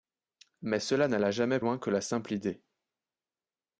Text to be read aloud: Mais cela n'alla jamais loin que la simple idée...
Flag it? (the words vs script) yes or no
no